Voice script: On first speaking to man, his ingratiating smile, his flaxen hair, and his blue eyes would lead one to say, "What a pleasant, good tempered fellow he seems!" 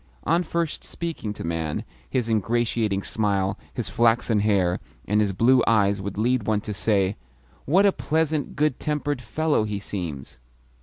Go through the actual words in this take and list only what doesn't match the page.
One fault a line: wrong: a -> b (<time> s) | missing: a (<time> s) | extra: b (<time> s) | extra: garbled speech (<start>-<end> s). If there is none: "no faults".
no faults